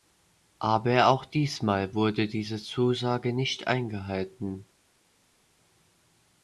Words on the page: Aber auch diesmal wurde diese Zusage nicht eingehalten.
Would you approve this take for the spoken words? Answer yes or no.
yes